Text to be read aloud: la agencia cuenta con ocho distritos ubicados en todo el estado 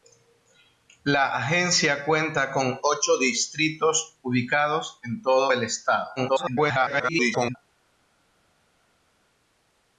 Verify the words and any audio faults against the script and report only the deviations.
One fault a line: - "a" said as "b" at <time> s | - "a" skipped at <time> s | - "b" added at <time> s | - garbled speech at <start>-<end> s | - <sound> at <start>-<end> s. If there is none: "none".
- garbled speech at 6.2-7.6 s